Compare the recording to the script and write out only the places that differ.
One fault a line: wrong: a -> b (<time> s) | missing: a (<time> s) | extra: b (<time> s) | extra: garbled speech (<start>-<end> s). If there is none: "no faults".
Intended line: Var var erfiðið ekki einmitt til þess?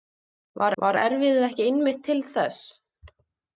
no faults